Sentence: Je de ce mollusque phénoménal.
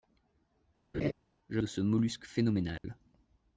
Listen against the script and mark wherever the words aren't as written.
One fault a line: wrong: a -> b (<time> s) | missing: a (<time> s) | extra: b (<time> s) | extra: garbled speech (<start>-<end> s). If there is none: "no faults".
no faults